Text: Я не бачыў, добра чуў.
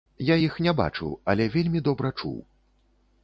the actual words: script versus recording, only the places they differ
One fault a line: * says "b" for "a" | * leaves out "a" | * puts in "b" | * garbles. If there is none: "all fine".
* puts in "іх"
* puts in "але вельмі"